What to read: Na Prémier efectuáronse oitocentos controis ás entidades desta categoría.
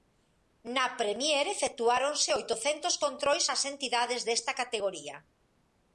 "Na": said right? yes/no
yes